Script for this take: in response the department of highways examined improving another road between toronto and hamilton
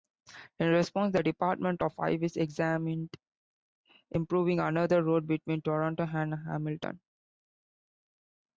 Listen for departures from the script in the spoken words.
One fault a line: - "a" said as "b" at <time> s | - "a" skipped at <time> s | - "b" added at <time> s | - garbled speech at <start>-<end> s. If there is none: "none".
none